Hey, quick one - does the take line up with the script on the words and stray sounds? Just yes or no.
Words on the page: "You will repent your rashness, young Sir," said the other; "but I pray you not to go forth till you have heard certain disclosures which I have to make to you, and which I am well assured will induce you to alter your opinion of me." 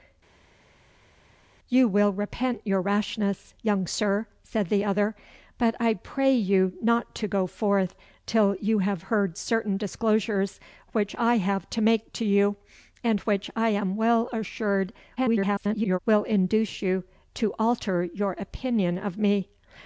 no